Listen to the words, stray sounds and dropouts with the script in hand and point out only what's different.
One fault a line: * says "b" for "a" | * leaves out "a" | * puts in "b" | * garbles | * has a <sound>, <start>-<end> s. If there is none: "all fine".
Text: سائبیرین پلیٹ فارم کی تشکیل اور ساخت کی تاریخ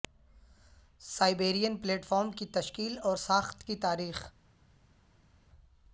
all fine